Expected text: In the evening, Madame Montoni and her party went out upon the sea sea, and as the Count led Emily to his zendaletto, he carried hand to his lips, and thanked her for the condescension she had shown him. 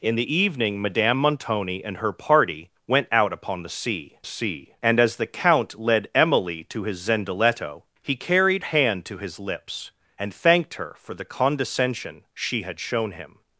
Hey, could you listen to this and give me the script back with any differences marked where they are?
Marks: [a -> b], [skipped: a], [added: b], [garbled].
In the evening, Madame Montoni and her party went out upon the sea sea, and as the Count led Emily to his zendaletto, he carried hand to his lips, and thanked her for the condescension she had shown him.